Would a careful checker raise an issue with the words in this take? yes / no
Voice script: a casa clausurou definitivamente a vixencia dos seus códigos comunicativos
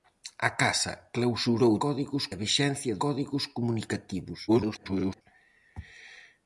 yes